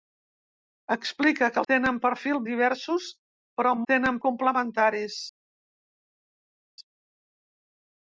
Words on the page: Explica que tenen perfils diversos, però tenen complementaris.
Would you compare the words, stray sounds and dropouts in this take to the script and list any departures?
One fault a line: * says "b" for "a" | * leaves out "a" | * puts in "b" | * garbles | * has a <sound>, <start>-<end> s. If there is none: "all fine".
all fine